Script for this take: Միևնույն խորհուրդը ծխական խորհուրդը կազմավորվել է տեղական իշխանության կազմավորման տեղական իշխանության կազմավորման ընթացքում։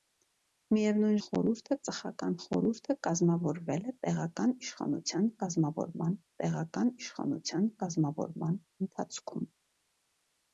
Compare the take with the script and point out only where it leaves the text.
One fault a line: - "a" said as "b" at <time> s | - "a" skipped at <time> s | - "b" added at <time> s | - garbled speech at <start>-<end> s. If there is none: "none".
none